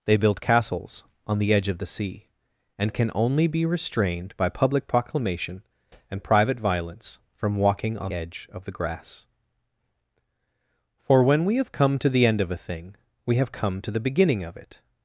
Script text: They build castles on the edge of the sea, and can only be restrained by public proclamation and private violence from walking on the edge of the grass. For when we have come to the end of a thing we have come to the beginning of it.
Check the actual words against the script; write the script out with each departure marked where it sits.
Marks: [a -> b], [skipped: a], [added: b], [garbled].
They build castles on the edge of the sea, and can only be restrained by public proclamation and private violence from walking on [skipped: the] edge of the grass. For when we have come to the end of a thing we have come to the beginning of it.